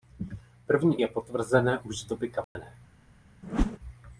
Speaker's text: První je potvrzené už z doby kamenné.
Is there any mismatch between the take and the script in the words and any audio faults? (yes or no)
yes